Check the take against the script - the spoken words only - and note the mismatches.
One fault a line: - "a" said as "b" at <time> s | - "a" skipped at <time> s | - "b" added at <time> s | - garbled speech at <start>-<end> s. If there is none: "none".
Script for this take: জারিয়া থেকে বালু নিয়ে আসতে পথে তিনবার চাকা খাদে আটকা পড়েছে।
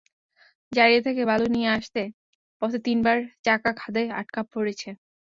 none